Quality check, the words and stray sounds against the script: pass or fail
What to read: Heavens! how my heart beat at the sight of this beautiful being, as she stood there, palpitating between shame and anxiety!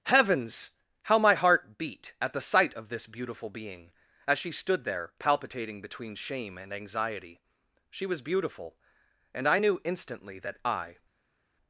fail